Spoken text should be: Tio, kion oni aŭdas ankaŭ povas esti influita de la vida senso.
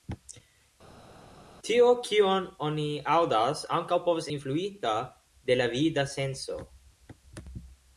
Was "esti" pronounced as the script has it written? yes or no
no